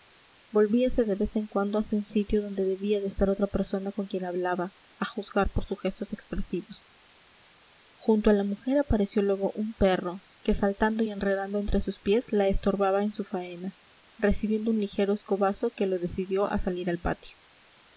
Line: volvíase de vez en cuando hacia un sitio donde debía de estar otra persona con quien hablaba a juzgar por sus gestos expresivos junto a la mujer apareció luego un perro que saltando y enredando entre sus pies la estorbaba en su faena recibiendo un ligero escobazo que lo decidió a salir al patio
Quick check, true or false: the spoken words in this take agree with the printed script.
true